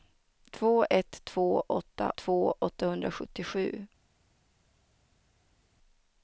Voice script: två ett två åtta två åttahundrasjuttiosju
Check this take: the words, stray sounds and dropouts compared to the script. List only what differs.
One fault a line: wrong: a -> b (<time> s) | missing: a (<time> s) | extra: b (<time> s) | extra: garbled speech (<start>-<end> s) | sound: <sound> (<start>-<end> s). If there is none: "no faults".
no faults